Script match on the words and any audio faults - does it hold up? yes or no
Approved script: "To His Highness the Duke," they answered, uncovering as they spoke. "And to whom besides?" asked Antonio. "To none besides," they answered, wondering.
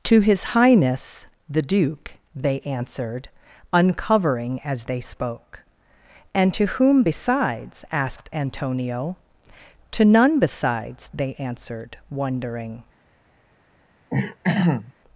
no